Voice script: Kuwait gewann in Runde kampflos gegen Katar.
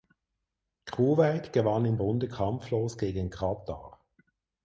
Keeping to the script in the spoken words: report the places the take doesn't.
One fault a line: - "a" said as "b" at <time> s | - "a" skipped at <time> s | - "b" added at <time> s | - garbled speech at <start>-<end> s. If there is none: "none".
none